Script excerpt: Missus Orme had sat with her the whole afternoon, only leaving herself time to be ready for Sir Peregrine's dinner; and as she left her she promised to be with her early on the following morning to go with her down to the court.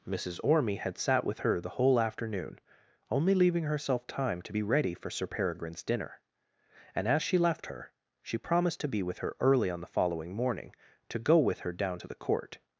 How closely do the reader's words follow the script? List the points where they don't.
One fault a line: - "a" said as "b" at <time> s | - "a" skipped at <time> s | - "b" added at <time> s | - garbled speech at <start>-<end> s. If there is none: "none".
none